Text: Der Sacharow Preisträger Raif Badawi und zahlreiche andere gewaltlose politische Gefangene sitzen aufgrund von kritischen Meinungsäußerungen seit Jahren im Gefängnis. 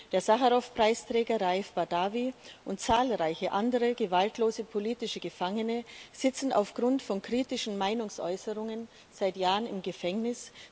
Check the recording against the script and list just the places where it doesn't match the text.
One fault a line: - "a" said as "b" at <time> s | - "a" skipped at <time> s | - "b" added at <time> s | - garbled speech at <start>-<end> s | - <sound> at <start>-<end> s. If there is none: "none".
none